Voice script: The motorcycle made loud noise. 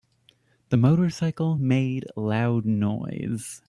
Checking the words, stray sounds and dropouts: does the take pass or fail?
pass